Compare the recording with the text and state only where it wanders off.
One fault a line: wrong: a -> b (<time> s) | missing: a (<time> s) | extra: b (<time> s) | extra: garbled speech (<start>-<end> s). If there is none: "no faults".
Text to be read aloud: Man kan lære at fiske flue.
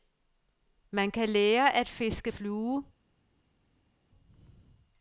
no faults